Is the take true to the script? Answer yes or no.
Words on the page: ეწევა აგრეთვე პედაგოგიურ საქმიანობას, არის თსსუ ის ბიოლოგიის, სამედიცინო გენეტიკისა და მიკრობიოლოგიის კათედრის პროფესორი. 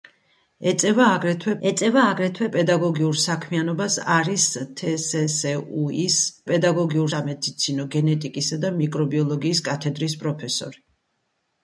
no